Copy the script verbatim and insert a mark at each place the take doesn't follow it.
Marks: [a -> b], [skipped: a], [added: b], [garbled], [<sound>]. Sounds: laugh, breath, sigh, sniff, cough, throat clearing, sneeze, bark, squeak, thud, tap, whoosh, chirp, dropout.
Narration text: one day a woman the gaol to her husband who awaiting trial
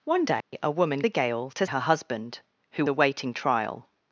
one day [dropout] a woman the gaol to her husband who awaiting trial